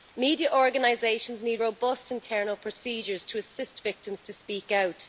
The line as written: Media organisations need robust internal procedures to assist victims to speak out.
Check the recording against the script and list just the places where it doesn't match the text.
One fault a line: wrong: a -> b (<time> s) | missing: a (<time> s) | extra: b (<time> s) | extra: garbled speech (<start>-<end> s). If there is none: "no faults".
no faults